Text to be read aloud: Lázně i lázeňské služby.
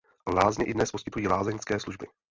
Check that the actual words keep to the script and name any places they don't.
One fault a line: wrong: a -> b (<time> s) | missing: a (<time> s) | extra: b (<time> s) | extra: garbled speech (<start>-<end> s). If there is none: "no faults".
extra: dnes poskytují (0.7 s)